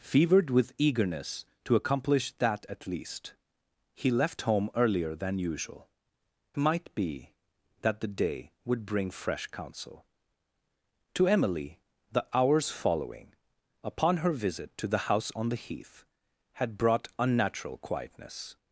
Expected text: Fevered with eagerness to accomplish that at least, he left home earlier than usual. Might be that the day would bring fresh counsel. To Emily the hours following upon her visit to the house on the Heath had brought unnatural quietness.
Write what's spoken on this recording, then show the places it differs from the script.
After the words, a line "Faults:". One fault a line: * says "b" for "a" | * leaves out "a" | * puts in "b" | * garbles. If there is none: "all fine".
Fevered with eagerness to accomplish that at least, he left home earlier than usual. Might be that the day would bring fresh counsel. To Emily the hours following upon her visit to the house on the Heath had brought unnatural quietness.
Faults:
all fine